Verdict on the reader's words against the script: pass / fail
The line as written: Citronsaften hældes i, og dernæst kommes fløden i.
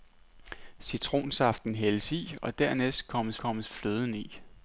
fail